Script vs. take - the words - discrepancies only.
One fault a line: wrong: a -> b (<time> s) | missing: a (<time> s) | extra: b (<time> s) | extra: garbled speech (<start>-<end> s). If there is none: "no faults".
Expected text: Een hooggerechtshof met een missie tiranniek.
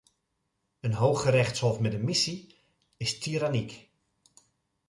extra: is (3.0 s)